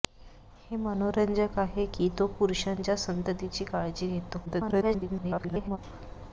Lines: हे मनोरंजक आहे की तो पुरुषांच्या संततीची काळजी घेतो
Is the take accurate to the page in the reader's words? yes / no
no